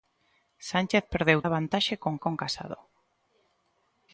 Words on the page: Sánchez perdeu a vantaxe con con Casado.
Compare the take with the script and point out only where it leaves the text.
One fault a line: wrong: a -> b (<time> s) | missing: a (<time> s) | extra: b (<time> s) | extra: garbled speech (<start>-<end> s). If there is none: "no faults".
no faults